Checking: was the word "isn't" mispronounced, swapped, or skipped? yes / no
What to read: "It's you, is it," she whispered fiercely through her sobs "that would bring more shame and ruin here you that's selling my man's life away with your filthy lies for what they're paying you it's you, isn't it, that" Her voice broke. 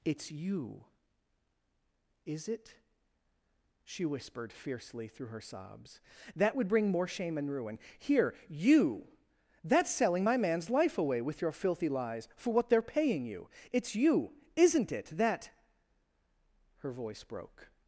no